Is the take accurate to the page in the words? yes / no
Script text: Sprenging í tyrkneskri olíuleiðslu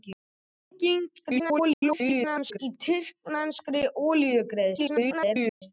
no